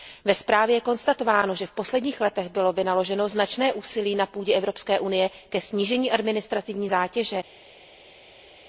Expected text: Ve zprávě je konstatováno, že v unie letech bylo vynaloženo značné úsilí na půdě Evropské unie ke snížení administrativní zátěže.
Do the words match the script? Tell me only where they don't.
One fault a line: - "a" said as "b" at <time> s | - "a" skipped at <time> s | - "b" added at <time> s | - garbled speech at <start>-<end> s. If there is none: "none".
- "unie" said as "posledních" at 1.7 s